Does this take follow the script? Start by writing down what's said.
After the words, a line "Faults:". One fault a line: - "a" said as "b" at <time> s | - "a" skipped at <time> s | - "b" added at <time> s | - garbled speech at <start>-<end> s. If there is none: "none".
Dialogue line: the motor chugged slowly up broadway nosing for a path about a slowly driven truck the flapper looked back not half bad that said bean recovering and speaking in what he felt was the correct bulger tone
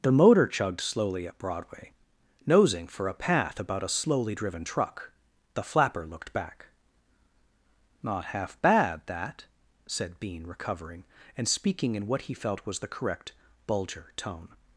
the motor chugged slowly up broadway nosing for a path about a slowly driven truck the flapper looked back not half bad that said bean recovering and speaking in what he felt was the correct bulger tone
Faults:
none